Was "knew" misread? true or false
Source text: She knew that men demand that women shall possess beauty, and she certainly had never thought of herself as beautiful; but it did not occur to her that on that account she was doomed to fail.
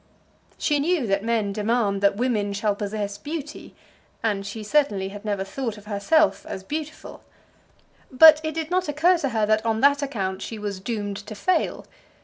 false